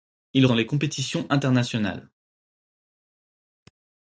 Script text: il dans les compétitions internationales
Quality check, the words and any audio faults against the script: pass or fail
pass